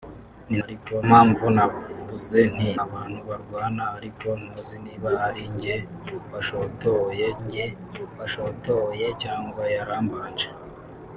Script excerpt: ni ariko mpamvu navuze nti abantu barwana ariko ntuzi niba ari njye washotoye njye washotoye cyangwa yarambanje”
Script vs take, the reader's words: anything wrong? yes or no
no